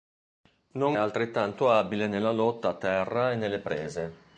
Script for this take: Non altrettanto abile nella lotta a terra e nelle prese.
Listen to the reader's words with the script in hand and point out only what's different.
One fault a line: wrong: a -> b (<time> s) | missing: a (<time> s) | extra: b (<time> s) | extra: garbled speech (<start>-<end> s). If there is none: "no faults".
no faults